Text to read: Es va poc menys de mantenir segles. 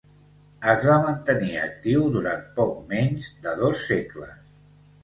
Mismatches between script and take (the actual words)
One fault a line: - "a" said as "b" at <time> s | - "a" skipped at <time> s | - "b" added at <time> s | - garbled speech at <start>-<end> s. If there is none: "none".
- "mantenir actiu durant" added at 1.0 s
- "mantenir" said as "dos" at 3.6 s